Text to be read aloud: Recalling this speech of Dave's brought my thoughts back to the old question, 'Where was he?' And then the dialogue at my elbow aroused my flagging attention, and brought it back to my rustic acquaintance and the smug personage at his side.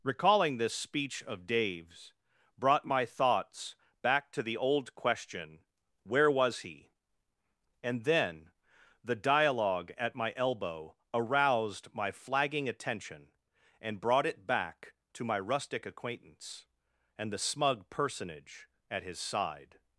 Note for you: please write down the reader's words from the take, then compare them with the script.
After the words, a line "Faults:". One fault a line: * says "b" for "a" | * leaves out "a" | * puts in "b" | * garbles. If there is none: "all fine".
Recalling this speech of Dave's brought my thoughts back to the old question, 'Where was he?' And then the dialogue at my elbow aroused my flagging attention, and brought it back to my rustic acquaintance and the smug personage at his side.
Faults:
all fine